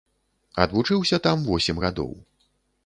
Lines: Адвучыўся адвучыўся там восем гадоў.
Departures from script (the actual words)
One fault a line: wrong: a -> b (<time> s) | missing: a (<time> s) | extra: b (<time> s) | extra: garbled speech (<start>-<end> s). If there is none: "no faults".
missing: адвучыўся (1.2 s)